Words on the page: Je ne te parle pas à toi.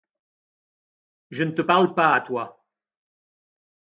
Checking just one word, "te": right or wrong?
right